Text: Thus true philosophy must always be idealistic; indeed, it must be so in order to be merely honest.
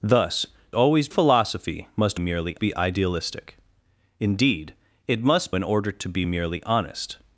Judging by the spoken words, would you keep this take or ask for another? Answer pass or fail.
fail